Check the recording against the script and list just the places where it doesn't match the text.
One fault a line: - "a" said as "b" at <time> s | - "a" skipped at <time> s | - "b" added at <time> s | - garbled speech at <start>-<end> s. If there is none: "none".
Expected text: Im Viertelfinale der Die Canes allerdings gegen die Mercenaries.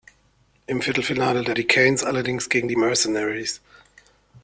none